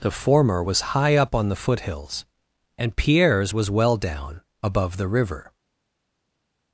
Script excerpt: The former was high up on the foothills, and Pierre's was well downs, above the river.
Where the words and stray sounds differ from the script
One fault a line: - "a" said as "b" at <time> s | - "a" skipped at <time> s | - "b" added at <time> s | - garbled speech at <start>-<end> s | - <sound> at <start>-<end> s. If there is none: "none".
- "downs" said as "down" at 4.0 s